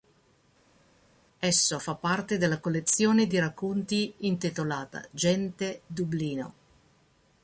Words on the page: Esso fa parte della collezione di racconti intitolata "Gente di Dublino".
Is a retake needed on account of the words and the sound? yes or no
yes